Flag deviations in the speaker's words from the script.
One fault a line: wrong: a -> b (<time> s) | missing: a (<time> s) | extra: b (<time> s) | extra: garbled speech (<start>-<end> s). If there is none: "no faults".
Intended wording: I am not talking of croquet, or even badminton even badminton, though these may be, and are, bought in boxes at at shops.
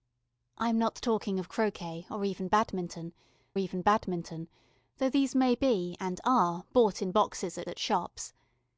no faults